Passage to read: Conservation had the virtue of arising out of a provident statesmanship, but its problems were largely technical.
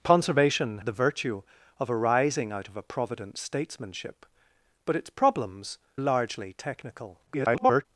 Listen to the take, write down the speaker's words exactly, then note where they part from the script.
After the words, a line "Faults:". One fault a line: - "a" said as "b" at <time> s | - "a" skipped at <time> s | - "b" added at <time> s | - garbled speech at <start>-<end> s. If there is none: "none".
Conservation the virtue of arising out of a provident statesmanship, but its problems largely technical. [garbled]
Faults:
- "had" skipped at 0.8 s
- "were" skipped at 5.8 s
- garbled speech at 7.3-7.9 s